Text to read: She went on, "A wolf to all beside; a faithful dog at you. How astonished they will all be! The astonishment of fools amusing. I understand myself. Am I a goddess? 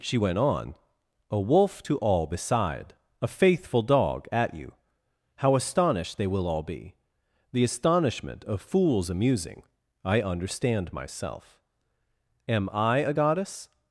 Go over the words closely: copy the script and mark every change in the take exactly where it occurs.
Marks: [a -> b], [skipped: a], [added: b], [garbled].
She went on, "A wolf to all beside; a faithful dog at you. How astonished they will all be! The astonishment of fools amusing. I understand myself. Am I a goddess?